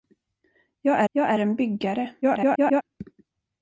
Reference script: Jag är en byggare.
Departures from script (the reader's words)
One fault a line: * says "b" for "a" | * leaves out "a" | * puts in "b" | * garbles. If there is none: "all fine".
* puts in "jag är"
* garbles